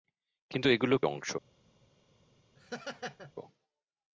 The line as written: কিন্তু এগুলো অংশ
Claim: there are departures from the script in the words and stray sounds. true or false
true